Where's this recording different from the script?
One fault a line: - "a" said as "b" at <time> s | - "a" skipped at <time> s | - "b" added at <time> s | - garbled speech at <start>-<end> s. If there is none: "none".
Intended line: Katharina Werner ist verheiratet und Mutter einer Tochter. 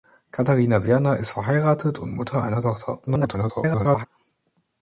- garbled speech at 3.1-4.1 s